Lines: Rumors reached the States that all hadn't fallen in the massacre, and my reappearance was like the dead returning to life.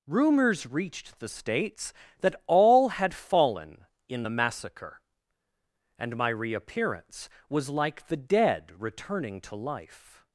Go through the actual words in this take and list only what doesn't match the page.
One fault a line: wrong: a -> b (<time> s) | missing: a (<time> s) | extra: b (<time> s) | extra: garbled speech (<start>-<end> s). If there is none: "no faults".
wrong: hadn't -> had (2.9 s)